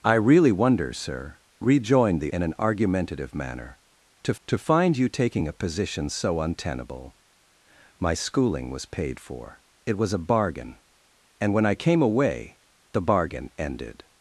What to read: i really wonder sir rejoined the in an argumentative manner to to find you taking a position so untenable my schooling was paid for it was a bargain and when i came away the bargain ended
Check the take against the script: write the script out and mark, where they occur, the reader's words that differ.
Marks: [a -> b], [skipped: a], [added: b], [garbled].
i really wonder sir rejoined the in an argumentative manner to to find you taking a position so untenable my schooling was paid for it was a bargain and when i came away the bargain ended